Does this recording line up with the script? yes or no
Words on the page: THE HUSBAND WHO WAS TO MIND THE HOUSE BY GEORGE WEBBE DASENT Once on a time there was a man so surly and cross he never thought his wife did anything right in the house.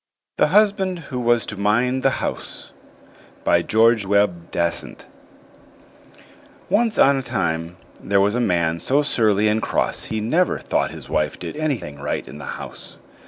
yes